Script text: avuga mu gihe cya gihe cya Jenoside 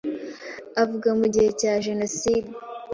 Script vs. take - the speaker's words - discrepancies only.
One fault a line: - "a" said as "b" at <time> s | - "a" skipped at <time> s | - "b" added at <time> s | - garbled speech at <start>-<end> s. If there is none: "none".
- "gihe cya" skipped at 1.7 s